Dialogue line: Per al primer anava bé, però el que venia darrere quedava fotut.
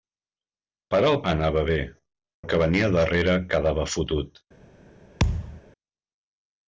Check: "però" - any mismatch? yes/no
yes